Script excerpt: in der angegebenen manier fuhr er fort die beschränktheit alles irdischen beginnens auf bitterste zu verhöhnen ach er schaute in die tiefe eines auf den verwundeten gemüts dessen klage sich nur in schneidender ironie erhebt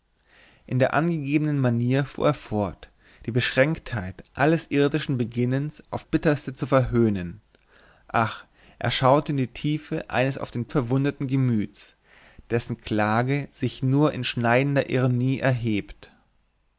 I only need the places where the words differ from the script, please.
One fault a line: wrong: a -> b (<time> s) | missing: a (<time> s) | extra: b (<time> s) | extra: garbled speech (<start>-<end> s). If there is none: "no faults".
no faults